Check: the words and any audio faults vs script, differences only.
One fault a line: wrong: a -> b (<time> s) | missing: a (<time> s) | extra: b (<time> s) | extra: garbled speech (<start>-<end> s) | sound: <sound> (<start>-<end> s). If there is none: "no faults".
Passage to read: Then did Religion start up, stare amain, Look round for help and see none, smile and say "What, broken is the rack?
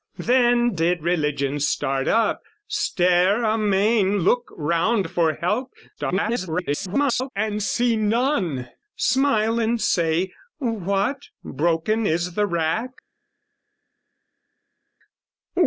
extra: garbled speech (6.0-7.3 s)